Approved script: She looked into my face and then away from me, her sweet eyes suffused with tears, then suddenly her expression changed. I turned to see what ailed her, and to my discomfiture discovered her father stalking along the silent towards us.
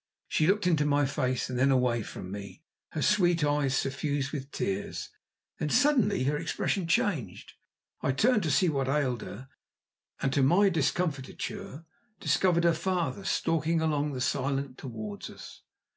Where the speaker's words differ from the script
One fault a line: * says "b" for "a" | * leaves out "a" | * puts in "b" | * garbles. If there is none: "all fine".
all fine